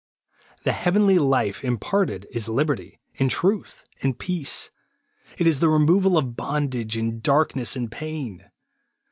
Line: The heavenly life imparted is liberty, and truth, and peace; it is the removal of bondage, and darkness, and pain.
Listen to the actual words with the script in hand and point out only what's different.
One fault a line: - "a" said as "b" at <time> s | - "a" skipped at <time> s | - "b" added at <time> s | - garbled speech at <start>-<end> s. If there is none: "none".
none